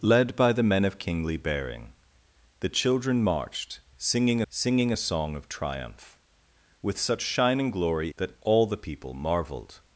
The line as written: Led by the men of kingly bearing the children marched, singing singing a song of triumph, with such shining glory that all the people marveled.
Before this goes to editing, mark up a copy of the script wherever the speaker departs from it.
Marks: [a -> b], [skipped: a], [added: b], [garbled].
Led by the men of kingly bearing the children marched, singing singing a song of triumph, with such shining glory that all the people marveled.